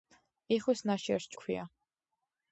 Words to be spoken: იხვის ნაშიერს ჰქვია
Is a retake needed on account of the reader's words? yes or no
no